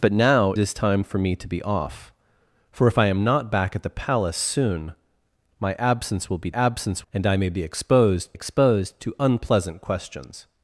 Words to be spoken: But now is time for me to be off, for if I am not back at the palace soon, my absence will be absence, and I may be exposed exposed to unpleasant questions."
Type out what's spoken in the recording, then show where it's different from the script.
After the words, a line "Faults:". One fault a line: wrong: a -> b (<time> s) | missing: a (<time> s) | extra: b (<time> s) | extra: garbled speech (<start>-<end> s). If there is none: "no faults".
But now is time for me to be off, for if I am not back at the palace soon, my absence will be absence, and I may be exposed exposed to unpleasant questions."
Faults:
no faults